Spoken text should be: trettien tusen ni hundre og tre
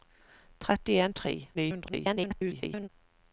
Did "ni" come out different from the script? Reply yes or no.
yes